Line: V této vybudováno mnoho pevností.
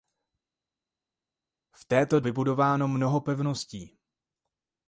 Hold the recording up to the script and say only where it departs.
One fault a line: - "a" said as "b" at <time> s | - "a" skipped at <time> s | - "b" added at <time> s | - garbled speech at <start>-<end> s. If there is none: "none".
none